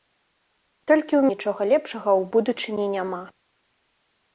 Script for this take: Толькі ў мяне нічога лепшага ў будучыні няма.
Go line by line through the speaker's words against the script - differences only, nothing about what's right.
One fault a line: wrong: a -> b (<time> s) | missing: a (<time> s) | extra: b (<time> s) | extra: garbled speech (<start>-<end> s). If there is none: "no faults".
missing: мяне (1.2 s)